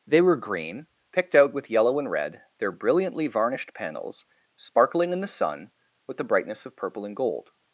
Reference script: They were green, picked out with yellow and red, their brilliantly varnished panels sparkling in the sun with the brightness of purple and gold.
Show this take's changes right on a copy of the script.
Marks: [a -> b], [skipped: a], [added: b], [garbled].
They were green, picked out with yellow and red, their brilliantly varnished panels sparkling in the sun with the brightness of purple and gold.